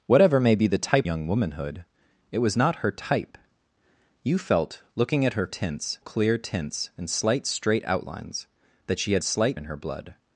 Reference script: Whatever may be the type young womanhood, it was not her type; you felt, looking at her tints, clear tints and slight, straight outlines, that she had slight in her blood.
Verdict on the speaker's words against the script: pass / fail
pass